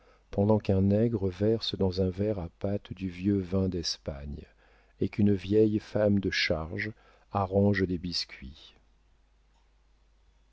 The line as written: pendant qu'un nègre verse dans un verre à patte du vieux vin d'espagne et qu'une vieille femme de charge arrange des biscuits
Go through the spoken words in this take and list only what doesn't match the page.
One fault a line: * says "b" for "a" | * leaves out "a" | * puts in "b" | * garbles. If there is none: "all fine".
all fine